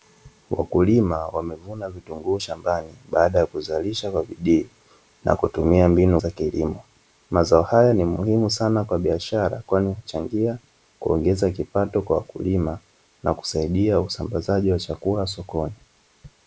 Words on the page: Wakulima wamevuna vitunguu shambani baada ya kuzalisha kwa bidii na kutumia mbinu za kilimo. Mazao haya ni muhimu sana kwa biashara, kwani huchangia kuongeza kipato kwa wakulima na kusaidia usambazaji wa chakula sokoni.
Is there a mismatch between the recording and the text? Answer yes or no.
no